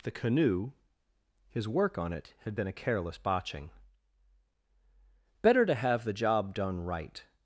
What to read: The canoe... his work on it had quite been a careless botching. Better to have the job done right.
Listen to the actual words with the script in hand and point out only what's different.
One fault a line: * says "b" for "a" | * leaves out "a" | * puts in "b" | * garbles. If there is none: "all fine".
* leaves out "quite"